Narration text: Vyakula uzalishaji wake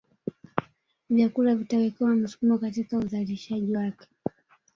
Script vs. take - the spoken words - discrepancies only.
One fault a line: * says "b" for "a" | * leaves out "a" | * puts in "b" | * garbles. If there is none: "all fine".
* puts in "vitawekewa msukumo katika"